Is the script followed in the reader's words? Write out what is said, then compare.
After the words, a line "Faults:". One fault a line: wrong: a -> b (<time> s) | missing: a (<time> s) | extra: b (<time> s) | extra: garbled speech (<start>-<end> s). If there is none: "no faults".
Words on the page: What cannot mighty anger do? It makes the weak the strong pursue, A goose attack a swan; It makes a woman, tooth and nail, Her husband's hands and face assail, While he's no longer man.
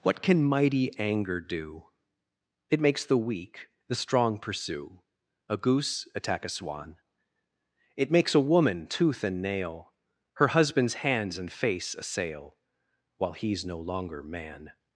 What can mighty anger do? It makes the weak the strong pursue, A goose attack a swan; It makes a woman, tooth and nail, Her husband's hands and face assail, While he's no longer man.
Faults:
wrong: cannot -> can (0.2 s)